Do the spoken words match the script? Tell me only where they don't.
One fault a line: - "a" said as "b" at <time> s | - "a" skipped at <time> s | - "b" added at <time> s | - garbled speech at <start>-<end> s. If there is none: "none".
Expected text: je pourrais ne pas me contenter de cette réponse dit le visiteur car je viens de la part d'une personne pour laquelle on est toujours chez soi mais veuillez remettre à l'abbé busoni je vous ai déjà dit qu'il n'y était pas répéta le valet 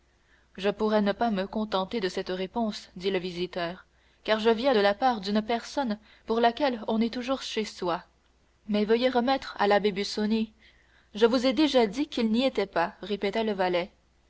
none